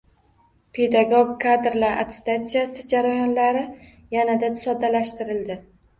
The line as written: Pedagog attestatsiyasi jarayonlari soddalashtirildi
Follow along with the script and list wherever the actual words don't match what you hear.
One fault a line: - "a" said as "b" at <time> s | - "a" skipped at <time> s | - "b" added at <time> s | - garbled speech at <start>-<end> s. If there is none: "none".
- "kadrlar" added at 1.4 s
- "yanada" added at 4.2 s